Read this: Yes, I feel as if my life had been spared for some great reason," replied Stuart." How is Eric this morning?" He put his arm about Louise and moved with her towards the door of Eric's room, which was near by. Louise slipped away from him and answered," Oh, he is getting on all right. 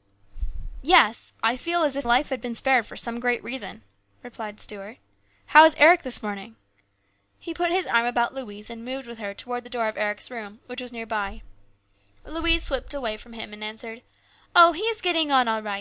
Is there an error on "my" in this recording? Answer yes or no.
yes